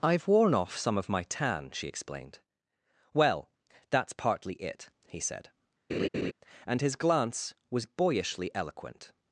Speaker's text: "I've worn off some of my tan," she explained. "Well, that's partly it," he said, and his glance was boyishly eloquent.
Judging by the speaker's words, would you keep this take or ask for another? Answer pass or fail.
pass